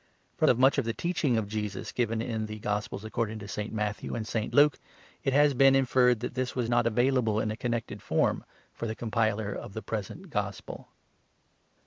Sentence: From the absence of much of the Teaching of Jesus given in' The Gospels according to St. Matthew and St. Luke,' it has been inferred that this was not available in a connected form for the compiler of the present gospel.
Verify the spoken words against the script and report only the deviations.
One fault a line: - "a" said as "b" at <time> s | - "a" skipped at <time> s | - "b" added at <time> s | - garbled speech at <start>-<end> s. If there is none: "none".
- "the absence" skipped at 0.5 s